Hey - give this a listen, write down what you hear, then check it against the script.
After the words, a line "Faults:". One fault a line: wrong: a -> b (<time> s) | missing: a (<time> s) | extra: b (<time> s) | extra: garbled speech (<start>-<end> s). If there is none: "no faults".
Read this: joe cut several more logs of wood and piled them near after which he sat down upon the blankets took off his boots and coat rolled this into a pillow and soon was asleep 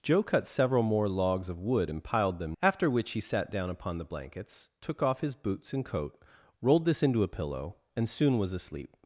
joe cut several more logs of wood and piled them after which he sat down upon the blankets took off his boots and coat rolled this into a pillow and soon was asleep
Faults:
missing: near (2.6 s)